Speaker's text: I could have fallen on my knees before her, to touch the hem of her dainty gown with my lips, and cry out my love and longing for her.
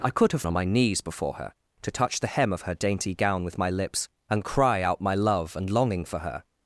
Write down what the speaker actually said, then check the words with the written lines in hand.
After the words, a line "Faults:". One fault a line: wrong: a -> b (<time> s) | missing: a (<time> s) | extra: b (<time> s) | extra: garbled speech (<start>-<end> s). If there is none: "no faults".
I could have on my knees before her, to touch the hem of her dainty gown with my lips, and cry out my love and longing for her.
Faults:
missing: fallen (0.4 s)